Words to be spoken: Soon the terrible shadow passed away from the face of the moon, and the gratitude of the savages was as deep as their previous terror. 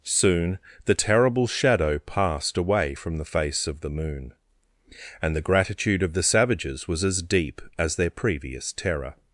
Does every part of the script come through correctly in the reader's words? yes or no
yes